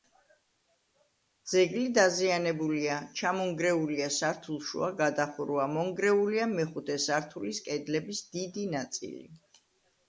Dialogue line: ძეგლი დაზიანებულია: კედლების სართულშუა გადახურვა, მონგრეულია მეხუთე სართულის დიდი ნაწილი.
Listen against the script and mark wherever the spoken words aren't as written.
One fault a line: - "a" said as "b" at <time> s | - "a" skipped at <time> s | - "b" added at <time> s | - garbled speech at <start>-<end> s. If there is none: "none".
- "კედლების" said as "ჩამონგრეულია" at 3.2 s
- "კედლების" added at 7.7 s